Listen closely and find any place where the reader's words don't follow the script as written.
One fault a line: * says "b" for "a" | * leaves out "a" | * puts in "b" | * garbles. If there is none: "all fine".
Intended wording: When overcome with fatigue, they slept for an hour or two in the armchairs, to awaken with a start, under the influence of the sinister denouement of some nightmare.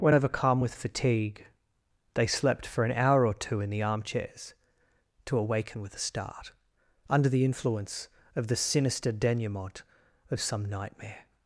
all fine